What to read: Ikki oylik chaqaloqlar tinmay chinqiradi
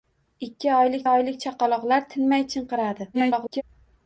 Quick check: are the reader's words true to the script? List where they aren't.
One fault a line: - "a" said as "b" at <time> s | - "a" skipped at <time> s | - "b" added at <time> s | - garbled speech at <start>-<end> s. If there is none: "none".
- "oylik" added at 1.1 s
- garbled speech at 3.1-3.6 s